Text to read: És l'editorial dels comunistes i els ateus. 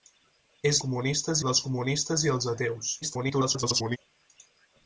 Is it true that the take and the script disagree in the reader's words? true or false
true